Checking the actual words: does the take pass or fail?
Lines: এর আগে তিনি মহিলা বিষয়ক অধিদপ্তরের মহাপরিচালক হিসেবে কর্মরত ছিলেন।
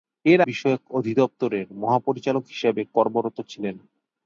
fail